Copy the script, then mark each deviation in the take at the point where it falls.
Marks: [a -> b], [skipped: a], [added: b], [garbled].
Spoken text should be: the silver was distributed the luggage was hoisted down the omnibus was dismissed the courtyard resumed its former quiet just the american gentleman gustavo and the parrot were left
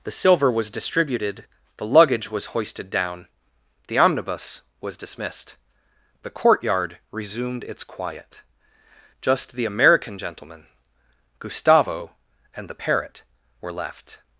the silver was distributed the luggage was hoisted down the omnibus was dismissed the courtyard resumed its [skipped: former] quiet just the american gentleman gustavo and the parrot were left